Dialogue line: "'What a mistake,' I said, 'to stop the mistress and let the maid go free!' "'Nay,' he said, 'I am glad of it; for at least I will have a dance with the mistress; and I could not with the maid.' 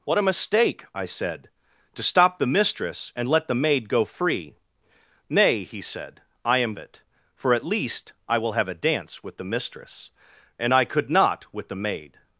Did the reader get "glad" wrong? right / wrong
wrong